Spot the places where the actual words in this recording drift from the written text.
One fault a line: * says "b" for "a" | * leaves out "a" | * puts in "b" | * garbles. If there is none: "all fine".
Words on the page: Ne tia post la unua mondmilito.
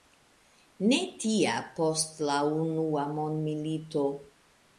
all fine